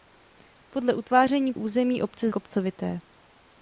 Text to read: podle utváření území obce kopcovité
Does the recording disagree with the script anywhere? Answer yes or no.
no